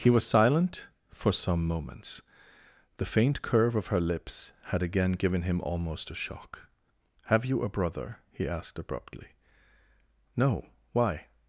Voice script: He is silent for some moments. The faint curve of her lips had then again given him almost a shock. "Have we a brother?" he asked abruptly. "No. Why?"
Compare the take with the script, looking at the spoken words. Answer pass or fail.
fail